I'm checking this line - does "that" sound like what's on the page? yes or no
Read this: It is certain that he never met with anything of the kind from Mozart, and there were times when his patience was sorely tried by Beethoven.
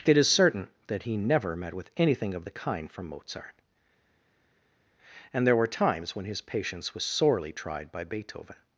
yes